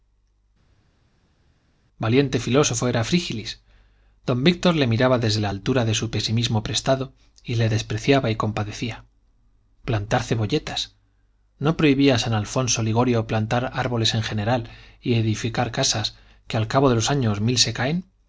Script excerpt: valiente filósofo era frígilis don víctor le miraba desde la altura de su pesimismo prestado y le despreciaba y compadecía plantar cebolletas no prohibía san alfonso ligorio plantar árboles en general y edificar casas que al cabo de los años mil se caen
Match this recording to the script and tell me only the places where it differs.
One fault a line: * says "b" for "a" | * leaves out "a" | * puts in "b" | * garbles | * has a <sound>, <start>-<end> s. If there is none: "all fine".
all fine